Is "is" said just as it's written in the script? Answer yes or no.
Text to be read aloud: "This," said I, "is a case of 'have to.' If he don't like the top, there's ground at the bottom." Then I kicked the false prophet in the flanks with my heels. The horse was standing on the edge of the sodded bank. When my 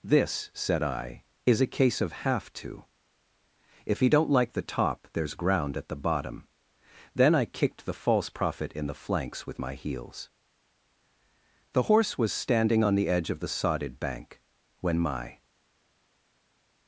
yes